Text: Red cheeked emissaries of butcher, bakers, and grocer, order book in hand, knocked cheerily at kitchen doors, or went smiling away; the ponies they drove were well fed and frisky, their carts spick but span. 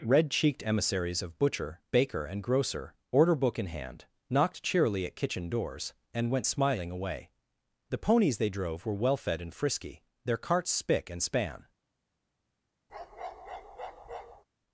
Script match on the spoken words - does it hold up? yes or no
no